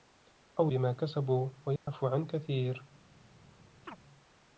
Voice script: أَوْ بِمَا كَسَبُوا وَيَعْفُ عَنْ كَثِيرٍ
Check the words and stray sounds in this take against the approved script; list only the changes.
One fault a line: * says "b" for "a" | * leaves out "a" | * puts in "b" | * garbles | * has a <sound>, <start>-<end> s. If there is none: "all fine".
* has a dropout, 1.8-1.9 s
* has a chirp, 3.9-4.0 s